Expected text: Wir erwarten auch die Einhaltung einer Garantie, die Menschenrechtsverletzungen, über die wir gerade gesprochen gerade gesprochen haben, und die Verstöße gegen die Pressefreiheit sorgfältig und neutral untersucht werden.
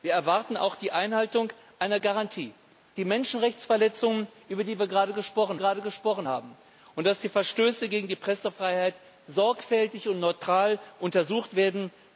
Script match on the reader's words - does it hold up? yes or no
yes